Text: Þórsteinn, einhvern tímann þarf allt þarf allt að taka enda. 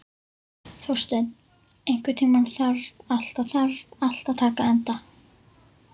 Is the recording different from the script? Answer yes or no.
no